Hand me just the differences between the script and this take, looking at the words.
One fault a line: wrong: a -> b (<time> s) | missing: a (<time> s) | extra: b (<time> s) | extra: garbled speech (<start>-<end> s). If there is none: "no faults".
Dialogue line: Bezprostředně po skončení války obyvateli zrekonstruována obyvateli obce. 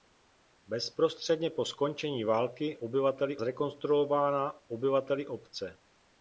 no faults